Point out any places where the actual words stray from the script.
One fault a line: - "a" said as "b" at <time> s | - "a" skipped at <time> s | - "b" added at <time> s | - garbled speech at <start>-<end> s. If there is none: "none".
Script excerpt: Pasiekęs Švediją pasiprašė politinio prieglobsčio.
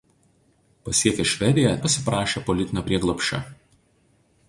none